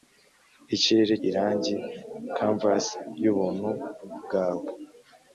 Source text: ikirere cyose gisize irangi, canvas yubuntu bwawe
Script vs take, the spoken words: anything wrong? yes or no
yes